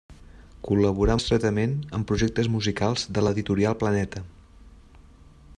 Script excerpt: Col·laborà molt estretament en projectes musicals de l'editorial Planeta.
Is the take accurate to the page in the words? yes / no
no